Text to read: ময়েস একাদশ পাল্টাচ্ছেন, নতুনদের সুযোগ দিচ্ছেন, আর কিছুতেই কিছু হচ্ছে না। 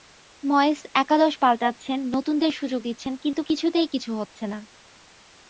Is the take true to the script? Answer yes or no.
no